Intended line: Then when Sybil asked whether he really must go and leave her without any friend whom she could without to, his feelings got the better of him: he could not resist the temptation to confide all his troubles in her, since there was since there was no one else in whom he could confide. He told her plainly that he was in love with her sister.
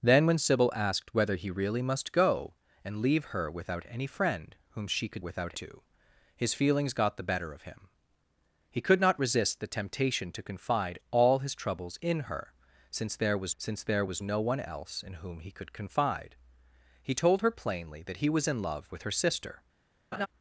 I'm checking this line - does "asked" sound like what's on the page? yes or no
yes